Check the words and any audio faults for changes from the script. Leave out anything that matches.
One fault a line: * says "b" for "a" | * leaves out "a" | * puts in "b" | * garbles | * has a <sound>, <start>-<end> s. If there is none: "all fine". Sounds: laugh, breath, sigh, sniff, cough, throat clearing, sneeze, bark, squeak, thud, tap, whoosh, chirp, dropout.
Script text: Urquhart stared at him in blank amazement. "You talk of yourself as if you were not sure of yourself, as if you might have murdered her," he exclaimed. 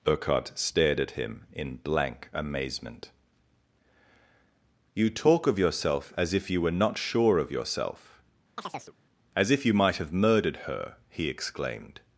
* has a chirp, 8.6-8.9 s